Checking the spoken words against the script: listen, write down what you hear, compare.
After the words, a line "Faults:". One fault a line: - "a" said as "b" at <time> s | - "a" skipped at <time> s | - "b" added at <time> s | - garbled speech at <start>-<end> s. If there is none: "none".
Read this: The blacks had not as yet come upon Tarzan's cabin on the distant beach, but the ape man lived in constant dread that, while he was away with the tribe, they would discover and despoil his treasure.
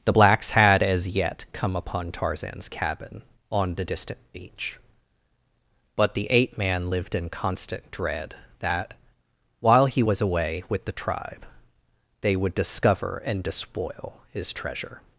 The blacks had as yet come upon Tarzan's cabin on the distant beach, but the ape man lived in constant dread that, while he was away with the tribe, they would discover and despoil his treasure.
Faults:
- "not" skipped at 0.8 s